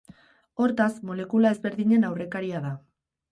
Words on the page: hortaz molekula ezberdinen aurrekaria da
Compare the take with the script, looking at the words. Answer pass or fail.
pass